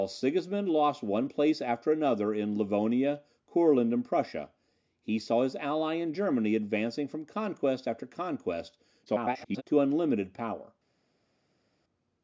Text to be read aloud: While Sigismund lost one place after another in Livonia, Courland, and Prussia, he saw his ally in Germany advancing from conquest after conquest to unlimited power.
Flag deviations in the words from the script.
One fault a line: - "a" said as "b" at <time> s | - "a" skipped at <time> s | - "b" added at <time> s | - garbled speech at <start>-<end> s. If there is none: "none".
- garbled speech at 9.1-9.6 s